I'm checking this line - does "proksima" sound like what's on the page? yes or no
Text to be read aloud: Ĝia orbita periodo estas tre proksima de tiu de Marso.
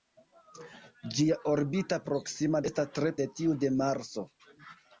no